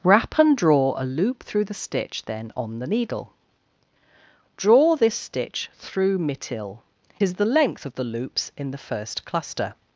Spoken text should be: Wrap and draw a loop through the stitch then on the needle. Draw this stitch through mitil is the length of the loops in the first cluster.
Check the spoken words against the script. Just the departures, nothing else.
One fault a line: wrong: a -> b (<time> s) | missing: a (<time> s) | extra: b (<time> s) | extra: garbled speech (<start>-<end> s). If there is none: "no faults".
no faults